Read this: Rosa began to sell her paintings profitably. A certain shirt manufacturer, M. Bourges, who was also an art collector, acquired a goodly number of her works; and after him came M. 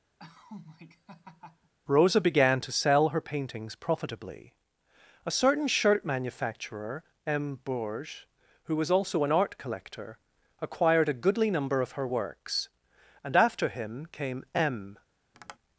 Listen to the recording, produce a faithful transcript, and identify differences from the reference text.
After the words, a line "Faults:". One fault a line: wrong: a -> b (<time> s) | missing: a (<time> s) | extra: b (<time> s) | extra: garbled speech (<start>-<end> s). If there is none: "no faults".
Rosa began to sell her paintings profitably. A certain shirt manufacturer, M. Bourges, who was also an art collector, acquired a goodly number of her works; and after him came M.
Faults:
no faults